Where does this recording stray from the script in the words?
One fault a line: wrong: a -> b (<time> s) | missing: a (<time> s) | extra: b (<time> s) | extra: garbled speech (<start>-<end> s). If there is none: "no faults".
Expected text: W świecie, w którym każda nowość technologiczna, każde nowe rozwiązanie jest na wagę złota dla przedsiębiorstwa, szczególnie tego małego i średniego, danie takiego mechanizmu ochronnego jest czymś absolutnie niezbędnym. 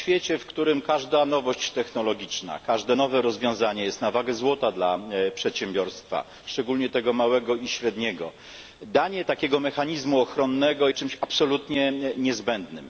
missing: jest (10.9 s)